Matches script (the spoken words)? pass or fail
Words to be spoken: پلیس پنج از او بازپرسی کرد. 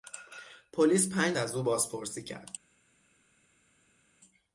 pass